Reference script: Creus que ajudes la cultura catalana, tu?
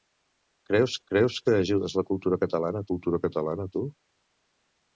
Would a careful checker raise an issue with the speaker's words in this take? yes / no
yes